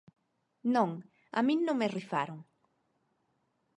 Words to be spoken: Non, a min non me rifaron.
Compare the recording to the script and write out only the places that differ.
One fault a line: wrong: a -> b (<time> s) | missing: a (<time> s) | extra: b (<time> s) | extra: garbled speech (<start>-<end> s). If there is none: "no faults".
no faults